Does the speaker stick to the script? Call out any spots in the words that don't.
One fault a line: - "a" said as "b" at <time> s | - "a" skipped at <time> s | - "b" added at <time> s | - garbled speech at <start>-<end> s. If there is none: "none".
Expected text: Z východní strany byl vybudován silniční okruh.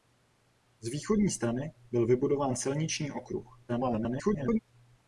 - garbled speech at 3.7-4.6 s